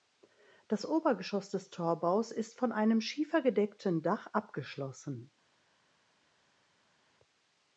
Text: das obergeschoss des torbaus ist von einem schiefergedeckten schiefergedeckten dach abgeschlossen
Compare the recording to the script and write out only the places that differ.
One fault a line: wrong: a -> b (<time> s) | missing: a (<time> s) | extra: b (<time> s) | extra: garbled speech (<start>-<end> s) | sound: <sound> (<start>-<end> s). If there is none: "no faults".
missing: schiefergedeckten (4.0 s)